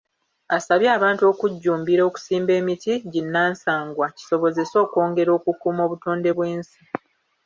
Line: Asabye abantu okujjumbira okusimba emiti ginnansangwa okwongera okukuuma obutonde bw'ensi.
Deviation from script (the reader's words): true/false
true